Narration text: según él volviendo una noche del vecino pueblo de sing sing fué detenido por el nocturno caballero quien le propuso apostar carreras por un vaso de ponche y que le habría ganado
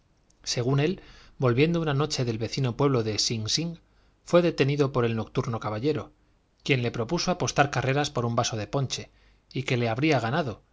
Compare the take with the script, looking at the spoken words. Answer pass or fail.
pass